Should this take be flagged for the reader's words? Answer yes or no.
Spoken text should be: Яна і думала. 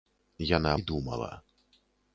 no